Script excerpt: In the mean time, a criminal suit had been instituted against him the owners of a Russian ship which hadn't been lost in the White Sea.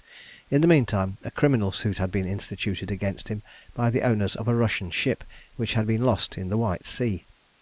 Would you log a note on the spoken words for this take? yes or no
yes